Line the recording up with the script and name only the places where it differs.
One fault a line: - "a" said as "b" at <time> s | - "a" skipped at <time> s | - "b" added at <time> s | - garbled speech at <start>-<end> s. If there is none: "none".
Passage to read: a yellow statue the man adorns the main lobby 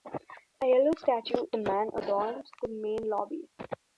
none